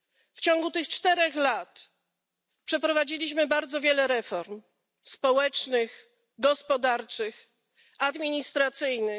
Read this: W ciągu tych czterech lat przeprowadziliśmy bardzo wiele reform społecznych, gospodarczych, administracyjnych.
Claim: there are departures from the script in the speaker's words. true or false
false